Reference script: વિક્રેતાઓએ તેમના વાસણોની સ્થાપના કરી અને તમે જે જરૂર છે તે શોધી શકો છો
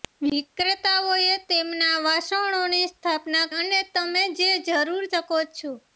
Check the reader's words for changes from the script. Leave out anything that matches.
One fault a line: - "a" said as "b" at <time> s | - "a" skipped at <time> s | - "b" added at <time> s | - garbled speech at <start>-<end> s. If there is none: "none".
- "કરી" skipped at 3.4 s
- "છે તે શોધી" skipped at 5.0 s